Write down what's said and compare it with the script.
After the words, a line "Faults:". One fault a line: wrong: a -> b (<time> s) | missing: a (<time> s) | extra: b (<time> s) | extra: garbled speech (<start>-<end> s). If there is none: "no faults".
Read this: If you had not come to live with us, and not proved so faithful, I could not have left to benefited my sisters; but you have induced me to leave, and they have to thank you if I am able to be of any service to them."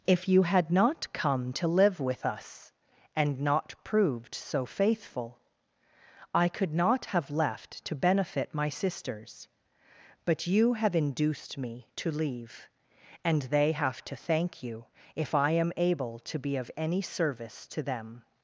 If you had not come to live with us, and not proved so faithful, I could not have left to benefit my sisters; but you have induced me to leave, and they have to thank you if I am able to be of any service to them."
Faults:
wrong: benefited -> benefit (8.0 s)